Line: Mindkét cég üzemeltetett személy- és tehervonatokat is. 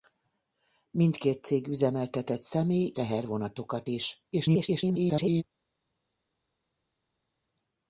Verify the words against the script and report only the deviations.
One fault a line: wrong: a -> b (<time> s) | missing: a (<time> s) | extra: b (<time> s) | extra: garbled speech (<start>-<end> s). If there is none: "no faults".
missing: és (2.9 s)
extra: garbled speech (4.3-5.4 s)